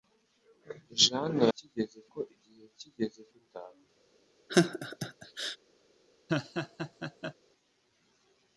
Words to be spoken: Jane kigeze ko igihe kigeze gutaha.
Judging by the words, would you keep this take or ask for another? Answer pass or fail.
pass